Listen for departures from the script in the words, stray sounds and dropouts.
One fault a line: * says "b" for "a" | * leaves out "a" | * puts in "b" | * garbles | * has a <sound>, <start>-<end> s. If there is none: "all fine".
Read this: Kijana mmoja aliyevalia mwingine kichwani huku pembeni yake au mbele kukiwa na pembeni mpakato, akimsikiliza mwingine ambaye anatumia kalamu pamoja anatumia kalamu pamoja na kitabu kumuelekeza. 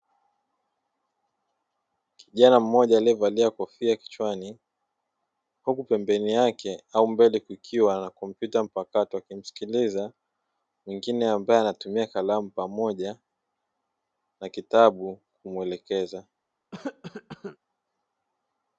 * says "kofia" for "mwingine"
* says "kompyuta" for "pembeni"
* leaves out "anatumia kalamu pamoja"
* has a cough, 16.7-17.6 s